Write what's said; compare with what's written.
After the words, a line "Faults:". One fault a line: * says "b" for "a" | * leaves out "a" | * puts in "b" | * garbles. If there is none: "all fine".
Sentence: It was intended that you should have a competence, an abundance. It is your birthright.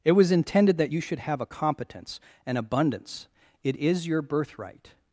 It was intended that you should have a competence, an abundance. It is your birthright.
Faults:
all fine